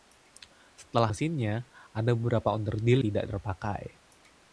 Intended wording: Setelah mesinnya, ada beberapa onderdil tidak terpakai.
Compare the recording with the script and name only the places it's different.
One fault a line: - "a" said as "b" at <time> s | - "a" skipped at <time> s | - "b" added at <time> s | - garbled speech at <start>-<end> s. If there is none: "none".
none